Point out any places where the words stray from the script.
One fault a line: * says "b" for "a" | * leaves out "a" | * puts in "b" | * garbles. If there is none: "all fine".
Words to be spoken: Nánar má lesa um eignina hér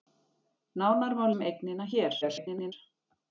* leaves out "lesa"
* garbles